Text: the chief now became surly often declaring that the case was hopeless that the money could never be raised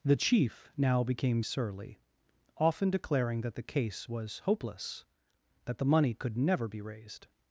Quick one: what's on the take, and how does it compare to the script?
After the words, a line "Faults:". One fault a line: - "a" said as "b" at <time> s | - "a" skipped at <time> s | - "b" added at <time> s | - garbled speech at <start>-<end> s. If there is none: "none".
the chief now became surly often declaring that the case was hopeless that the money could never be raised
Faults:
none